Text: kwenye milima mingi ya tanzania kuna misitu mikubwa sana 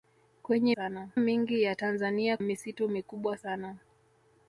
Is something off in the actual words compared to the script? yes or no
yes